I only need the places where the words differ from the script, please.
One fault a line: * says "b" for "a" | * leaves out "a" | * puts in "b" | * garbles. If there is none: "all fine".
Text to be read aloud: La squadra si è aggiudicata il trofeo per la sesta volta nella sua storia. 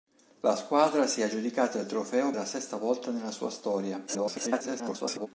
* leaves out "per"
* garbles